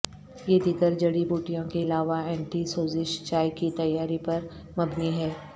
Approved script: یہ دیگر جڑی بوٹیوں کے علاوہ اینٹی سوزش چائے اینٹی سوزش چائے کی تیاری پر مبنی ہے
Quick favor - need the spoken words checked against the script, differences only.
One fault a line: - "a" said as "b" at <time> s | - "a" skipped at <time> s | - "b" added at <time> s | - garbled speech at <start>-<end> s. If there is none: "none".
- "اینٹی سوزش چائے" skipped at 3.5 s